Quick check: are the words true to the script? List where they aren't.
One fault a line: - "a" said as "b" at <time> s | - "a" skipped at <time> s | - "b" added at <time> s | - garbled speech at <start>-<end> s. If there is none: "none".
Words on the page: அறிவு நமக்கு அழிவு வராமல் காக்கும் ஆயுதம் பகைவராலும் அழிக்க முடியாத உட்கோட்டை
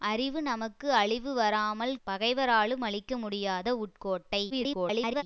- "காக்கும் ஆயுதம்" skipped at 1.9 s
- garbled speech at 4.5-5.2 s